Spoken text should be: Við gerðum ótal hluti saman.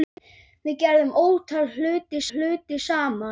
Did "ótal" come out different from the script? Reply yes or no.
no